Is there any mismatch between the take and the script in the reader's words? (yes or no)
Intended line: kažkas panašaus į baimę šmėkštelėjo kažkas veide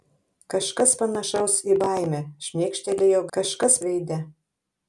no